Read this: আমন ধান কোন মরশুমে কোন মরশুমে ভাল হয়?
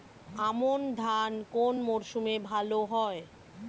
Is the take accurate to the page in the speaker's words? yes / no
no